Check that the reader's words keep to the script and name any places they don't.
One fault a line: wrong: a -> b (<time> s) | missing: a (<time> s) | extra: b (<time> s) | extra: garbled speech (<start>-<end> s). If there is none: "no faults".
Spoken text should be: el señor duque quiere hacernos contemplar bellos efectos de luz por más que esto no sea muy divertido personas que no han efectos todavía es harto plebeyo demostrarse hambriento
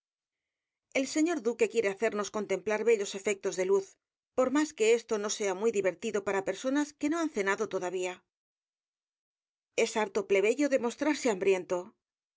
extra: para (6.3 s)
wrong: efectos -> cenado (7.3 s)